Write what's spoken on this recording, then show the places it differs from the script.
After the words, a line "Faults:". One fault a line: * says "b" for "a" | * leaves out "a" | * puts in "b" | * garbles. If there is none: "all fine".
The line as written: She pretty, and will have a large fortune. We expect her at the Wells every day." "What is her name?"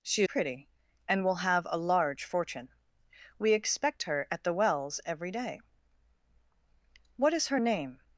She pretty, and will have a large fortune. We expect her at the Wells every day." "What is her name?"
Faults:
all fine